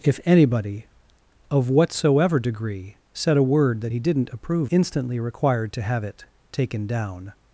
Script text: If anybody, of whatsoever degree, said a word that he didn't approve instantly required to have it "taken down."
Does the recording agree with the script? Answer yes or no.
yes